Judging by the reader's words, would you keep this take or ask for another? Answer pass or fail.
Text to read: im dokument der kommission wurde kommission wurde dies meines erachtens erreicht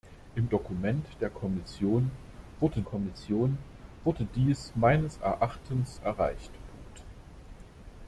pass